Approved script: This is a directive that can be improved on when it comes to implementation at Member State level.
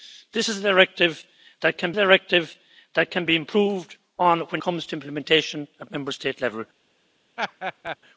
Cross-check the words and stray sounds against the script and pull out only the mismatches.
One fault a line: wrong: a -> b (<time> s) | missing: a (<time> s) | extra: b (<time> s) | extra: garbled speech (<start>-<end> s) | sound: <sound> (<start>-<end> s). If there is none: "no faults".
extra: directive that can (1.9 s)
missing: it (4.6 s)
sound: laugh (7.4-8.0 s)